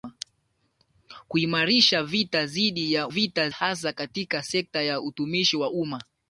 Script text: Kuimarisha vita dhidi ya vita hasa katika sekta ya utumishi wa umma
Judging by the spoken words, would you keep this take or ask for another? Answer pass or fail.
pass